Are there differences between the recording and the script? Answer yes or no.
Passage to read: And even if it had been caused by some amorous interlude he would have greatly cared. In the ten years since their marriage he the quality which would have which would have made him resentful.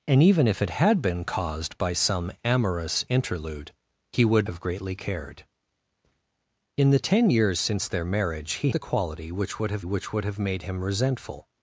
no